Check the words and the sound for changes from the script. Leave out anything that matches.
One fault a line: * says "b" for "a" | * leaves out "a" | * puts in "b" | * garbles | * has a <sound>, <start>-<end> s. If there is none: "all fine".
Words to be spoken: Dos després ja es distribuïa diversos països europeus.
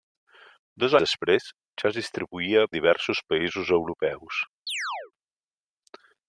* has a chirp, 4.7-5.1 s